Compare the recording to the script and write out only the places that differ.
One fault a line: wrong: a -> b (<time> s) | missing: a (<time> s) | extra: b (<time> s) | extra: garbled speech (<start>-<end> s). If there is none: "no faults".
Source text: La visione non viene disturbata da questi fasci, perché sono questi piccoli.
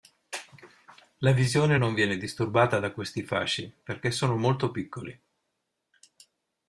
wrong: questi -> molto (4.4 s)